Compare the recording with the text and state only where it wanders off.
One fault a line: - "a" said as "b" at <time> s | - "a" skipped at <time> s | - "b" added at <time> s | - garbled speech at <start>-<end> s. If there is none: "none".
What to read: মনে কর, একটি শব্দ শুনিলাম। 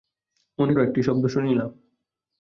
- "কর" skipped at 0.7 s